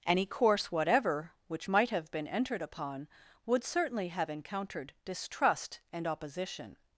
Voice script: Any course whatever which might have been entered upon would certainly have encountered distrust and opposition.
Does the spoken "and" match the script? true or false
true